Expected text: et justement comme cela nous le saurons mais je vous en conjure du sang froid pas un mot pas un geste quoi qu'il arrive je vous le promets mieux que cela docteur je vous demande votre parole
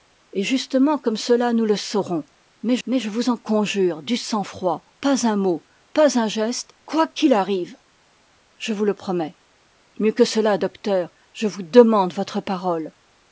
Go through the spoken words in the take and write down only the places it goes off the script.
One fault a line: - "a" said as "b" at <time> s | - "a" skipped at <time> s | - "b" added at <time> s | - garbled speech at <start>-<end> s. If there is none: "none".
- "mais" added at 2.9 s